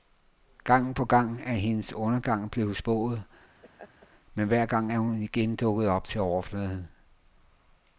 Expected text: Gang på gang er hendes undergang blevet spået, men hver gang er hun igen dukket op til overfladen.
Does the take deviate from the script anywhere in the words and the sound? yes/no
yes